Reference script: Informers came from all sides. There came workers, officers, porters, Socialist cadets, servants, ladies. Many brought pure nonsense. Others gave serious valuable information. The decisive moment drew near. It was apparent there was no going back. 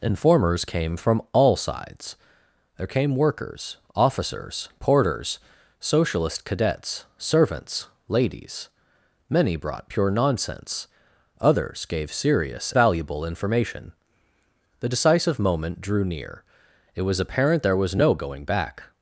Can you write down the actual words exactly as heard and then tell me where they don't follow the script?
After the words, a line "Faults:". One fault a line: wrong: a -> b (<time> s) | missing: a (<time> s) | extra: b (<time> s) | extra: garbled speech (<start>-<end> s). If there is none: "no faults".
Informers came from all sides. There came workers, officers, porters, Socialist cadets, servants, ladies. Many brought pure nonsense. Others gave serious valuable information. The decisive moment drew near. It was apparent there was no going back.
Faults:
no faults